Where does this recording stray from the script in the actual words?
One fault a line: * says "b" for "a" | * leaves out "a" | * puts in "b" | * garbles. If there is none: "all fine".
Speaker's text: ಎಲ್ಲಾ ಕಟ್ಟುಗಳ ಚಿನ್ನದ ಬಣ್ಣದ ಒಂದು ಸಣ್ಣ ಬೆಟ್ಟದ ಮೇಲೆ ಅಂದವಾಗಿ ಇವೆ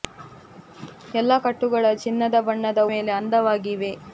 * leaves out "ಒಂದು ಸಣ್ಣ ಬೆಟ್ಟದ"